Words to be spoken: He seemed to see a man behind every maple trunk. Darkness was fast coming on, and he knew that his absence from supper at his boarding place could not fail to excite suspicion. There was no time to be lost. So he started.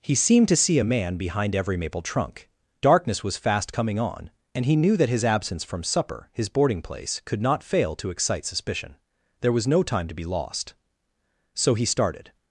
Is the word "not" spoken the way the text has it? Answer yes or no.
yes